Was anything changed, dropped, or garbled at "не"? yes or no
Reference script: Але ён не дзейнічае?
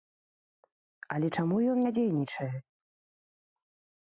no